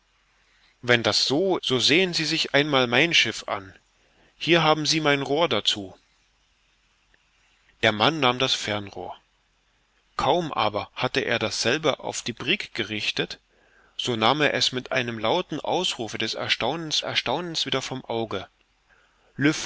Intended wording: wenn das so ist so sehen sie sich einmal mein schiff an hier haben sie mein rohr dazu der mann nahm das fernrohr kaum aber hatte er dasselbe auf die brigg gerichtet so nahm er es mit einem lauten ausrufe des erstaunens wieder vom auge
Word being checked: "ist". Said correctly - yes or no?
no